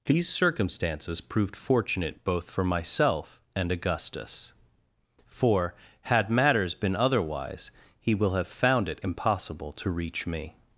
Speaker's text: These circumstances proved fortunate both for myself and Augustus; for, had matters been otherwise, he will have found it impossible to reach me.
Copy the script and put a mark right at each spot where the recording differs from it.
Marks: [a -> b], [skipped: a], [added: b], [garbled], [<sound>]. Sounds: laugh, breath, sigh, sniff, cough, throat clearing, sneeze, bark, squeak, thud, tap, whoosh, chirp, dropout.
These circumstances proved fortunate both for myself and Augustus; for, had matters been otherwise, he will have found it impossible to reach me.